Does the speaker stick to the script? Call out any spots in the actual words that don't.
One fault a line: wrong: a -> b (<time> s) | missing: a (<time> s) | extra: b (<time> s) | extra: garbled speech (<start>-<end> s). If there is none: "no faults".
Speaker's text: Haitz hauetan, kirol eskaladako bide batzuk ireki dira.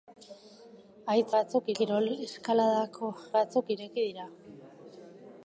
wrong: hauetan -> batzuk (1.4 s)
missing: bide (3.1 s)